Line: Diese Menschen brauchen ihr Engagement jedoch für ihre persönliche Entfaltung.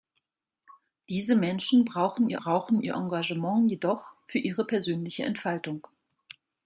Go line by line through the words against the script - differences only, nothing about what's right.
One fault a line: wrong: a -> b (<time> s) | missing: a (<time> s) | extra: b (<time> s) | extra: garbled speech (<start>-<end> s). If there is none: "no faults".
extra: brauchen ihr (2.3 s)